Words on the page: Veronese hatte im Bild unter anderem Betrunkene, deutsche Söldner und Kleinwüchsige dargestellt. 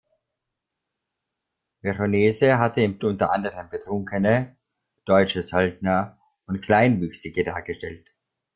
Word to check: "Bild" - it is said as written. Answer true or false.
false